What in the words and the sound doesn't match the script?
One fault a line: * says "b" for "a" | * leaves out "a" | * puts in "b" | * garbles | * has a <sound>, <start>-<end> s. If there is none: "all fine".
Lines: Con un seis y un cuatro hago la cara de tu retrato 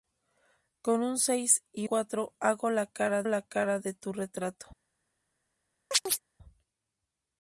* leaves out "un"
* puts in "la cara"
* has a chirp, 5.9-6.2 s